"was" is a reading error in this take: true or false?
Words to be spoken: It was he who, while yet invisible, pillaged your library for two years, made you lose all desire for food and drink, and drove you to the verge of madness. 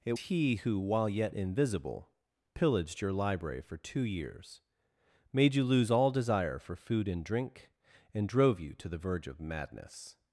true